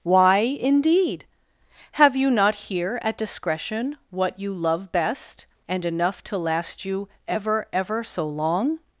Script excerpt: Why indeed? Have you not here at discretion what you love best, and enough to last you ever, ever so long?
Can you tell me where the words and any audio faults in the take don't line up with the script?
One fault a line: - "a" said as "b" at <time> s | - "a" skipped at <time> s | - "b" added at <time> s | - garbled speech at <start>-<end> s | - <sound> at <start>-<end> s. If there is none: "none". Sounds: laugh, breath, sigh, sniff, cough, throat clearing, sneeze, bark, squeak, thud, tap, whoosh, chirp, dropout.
none